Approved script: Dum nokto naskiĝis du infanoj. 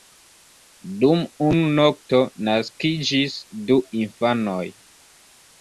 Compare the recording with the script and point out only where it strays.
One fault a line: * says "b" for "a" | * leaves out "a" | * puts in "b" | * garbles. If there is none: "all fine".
* puts in "unu"